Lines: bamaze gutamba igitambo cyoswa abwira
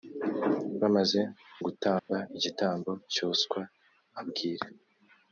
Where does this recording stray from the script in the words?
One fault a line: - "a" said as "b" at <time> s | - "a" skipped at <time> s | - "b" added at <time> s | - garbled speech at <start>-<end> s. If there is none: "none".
none